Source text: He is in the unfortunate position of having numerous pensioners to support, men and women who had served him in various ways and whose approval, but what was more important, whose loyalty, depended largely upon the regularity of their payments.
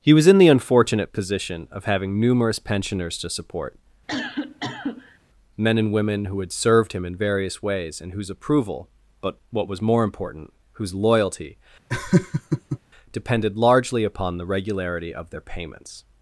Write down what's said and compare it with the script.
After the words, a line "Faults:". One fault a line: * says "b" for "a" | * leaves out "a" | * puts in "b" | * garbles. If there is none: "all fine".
He was in the unfortunate position of having numerous pensioners to support, men and women who had served him in various ways and whose approval, but what was more important, whose loyalty, depended largely upon the regularity of their payments.
Faults:
* says "was" for "is"